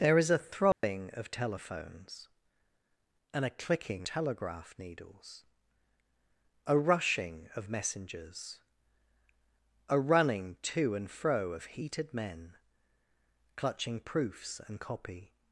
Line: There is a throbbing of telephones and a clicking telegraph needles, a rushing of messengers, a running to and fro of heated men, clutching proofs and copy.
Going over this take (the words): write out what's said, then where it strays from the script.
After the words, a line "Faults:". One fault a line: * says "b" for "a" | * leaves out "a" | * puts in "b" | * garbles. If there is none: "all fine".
There is a throbbing of telephones and a clicking telegraph needles, a rushing of messengers, a running to and fro of heated men, clutching proofs and copy.
Faults:
all fine